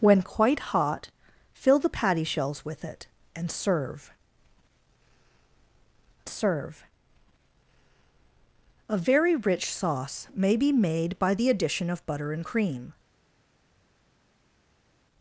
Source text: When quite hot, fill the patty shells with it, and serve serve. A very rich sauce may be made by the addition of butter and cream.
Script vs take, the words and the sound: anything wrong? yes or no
no